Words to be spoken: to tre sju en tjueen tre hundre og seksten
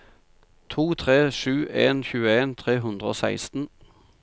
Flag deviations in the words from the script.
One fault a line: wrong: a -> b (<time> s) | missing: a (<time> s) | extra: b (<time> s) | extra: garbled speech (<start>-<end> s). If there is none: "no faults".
no faults